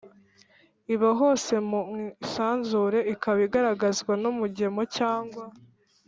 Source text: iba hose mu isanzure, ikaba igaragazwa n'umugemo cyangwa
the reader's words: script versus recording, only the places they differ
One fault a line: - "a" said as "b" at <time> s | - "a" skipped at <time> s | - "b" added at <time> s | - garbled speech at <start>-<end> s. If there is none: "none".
none